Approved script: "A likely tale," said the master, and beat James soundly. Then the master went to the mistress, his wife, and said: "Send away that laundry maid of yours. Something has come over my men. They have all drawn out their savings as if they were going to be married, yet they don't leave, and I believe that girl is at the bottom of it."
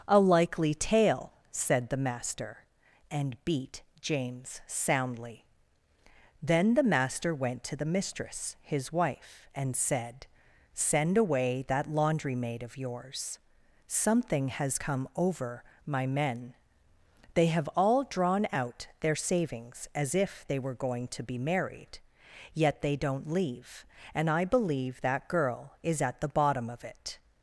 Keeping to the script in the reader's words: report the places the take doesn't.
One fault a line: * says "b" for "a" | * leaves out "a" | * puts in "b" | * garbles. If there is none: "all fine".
all fine